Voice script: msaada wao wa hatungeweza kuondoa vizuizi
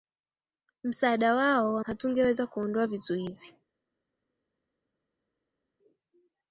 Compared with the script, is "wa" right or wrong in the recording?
right